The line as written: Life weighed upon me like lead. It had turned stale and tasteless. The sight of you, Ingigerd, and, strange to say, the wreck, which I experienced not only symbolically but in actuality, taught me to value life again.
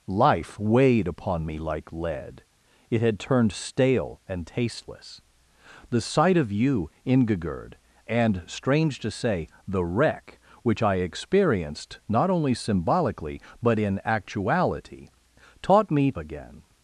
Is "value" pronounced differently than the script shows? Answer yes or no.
yes